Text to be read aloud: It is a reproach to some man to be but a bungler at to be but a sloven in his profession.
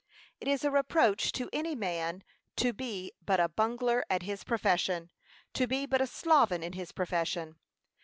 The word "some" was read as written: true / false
false